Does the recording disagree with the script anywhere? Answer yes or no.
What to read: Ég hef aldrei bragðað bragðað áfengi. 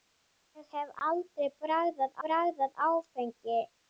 no